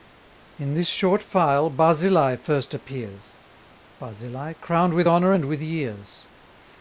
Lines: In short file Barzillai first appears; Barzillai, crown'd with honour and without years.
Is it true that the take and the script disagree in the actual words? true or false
true